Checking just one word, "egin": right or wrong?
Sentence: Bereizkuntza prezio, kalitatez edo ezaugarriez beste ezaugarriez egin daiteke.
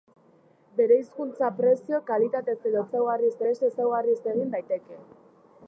right